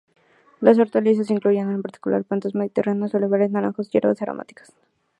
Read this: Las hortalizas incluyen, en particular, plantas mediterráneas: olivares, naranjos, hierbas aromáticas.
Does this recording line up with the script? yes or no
yes